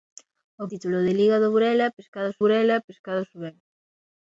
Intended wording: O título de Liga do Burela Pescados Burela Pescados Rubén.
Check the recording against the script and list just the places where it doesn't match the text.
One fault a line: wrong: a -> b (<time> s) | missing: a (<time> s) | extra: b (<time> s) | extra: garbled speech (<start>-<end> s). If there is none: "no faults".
no faults